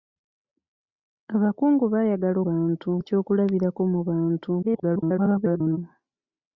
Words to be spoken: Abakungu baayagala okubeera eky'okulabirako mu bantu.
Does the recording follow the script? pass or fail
fail